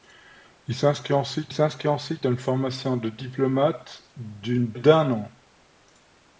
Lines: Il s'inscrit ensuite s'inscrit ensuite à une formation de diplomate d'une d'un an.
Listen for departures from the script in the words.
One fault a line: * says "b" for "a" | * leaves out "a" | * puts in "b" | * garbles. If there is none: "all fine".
all fine